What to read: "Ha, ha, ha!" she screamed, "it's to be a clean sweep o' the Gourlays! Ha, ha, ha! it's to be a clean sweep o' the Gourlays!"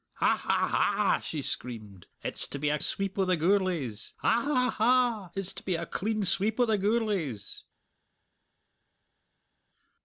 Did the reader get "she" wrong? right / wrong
right